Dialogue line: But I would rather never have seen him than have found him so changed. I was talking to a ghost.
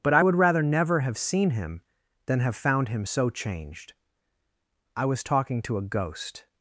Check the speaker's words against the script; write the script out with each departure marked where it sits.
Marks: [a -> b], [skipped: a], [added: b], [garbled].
But I would rather never have seen him than have found him so changed. I was talking to a ghost.